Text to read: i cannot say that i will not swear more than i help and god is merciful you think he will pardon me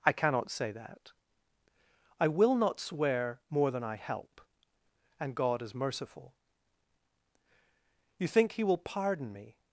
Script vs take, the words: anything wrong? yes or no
no